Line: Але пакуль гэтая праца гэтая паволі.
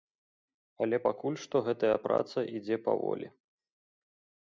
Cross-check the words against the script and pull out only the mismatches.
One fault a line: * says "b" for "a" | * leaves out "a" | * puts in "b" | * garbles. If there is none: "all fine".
* puts in "што"
* says "ідзе" for "гэтая"